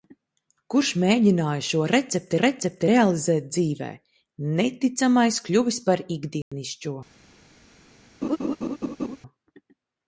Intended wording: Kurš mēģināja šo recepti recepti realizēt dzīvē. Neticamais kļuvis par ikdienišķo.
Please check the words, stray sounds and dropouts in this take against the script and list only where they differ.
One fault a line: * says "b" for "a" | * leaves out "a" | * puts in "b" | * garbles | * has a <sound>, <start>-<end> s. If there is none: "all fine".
* has a dropout, 6.4-6.5 s
* has a laugh, 8.2-9.2 s